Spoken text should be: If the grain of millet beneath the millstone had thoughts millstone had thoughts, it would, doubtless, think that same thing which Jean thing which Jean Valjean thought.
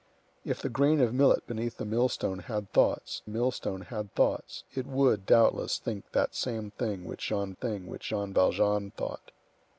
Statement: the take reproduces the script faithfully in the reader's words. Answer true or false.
true